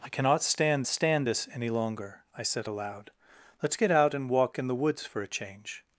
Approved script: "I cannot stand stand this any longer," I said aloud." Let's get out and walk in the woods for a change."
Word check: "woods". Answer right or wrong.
right